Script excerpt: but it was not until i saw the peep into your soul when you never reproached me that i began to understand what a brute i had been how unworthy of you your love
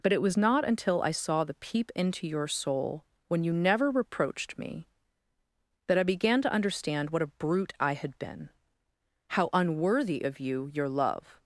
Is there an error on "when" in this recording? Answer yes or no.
no